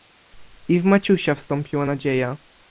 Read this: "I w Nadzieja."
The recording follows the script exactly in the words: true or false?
false